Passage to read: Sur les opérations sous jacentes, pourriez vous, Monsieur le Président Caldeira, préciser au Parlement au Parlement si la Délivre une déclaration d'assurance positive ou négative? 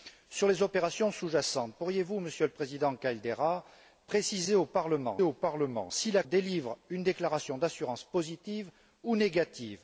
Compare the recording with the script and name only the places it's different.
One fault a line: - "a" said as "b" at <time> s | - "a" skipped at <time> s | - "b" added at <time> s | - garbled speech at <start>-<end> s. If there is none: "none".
none